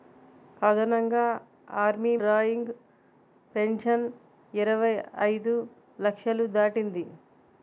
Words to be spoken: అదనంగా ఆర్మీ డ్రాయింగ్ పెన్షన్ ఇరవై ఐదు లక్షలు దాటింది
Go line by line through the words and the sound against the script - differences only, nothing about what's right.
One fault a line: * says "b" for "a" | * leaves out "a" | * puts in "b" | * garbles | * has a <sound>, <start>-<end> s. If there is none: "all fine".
all fine